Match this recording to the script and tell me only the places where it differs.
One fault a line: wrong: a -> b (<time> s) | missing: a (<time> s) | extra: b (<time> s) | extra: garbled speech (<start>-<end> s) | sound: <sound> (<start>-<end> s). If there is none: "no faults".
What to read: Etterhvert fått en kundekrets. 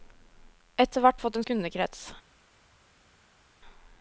no faults